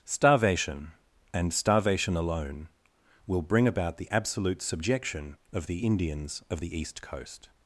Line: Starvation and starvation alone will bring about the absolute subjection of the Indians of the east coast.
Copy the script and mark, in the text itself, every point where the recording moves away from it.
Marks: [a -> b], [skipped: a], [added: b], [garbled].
Starvation and starvation alone will bring about the absolute subjection of the Indians of the east coast.